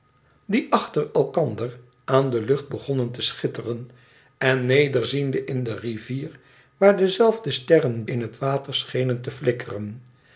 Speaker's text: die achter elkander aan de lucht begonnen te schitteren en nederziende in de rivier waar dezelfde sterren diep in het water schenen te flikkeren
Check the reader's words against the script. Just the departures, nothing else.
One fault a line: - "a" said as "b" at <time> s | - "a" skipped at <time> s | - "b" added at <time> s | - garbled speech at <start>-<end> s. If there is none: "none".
- "diep" skipped at 8.1 s